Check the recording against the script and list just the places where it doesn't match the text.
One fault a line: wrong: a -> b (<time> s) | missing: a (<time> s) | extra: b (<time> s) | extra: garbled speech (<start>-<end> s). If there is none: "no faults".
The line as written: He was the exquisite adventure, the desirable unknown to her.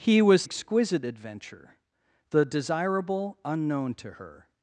missing: the (0.5 s)